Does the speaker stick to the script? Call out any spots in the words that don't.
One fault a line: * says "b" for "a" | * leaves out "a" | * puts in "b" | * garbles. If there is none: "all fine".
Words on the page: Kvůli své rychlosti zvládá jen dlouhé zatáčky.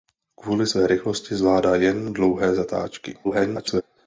* garbles